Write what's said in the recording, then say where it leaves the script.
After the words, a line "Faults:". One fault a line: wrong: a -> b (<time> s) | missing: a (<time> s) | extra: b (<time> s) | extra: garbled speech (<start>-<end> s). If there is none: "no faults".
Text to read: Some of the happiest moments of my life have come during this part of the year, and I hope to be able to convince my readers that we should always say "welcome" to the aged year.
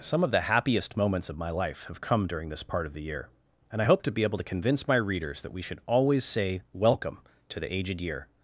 Some of the happiest moments of my life have come during this part of the year, and I hope to be able to convince my readers that we should always say "welcome" to the aged year.
Faults:
no faults